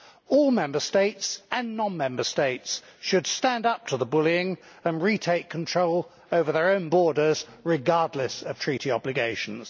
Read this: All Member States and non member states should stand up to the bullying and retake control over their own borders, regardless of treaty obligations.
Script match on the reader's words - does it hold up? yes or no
yes